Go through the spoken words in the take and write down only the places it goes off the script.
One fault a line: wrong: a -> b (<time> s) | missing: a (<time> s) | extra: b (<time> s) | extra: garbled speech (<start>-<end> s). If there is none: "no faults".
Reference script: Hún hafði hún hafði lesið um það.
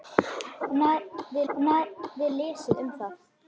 no faults